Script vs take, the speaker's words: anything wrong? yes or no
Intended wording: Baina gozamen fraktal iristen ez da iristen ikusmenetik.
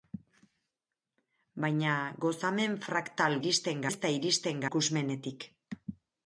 no